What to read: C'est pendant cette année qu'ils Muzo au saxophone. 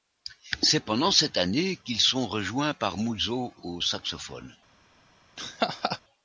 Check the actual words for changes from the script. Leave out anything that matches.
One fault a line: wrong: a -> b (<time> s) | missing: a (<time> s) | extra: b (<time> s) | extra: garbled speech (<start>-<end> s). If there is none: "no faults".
extra: sont rejoints par (2.0 s)